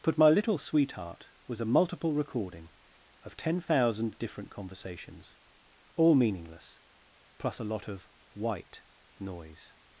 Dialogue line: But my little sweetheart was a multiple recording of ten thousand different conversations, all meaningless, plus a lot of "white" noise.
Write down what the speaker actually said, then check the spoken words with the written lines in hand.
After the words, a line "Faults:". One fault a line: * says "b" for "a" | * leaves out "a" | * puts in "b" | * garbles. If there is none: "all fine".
But my little sweetheart was a multiple recording of ten thousand different conversations, all meaningless, plus a lot of "white" noise.
Faults:
all fine